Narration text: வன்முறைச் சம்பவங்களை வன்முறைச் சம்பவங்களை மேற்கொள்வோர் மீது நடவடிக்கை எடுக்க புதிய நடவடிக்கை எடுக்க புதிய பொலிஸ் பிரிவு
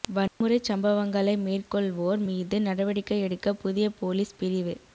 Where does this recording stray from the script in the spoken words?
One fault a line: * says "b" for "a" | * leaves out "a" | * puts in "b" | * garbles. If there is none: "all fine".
* leaves out "வன்முறைச் சம்பவங்களை"
* leaves out "நடவடிக்கை எடுக்க புதிய"